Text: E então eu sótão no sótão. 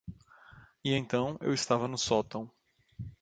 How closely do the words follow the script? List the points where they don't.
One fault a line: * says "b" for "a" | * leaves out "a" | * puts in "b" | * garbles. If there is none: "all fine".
* says "estava" for "sótão"